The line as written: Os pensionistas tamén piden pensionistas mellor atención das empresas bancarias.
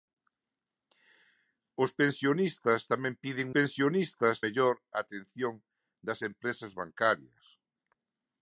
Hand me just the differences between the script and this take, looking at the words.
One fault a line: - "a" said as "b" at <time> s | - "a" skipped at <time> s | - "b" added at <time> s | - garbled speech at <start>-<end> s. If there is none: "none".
none